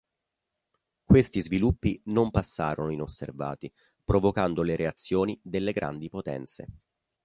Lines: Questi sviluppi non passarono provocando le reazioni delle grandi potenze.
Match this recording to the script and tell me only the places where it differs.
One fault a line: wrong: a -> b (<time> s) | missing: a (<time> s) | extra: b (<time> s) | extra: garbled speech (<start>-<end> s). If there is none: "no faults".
extra: inosservati (2.9 s)